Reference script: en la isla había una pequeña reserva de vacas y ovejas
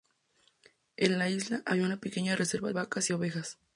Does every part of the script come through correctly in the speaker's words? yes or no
no